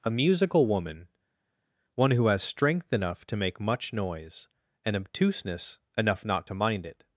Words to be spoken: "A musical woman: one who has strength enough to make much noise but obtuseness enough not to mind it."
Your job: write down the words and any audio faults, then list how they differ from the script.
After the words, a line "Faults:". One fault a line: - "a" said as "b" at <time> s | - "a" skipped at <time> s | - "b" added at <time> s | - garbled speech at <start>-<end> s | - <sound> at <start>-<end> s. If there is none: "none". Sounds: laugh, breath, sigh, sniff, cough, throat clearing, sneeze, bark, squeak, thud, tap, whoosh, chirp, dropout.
"A musical woman: one who has strength enough to make much noise and obtuseness enough not to mind it."
Faults:
- "but" said as "and" at 4.8 s